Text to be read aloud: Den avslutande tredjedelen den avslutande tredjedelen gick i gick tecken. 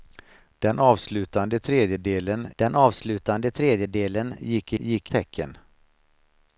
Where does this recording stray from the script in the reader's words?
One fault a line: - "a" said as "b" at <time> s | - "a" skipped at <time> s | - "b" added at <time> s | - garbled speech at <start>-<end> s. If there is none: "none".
none